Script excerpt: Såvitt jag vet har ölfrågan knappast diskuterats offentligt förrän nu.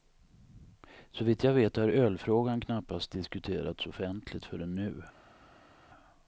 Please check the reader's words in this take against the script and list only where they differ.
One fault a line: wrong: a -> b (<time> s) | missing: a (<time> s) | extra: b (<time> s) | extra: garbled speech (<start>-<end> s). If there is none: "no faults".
no faults